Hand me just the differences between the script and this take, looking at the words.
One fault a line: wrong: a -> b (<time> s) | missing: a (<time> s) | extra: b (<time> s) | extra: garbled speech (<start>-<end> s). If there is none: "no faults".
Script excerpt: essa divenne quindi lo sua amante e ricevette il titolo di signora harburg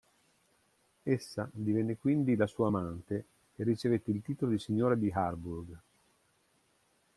wrong: lo -> la (2.4 s)
extra: di (4.9 s)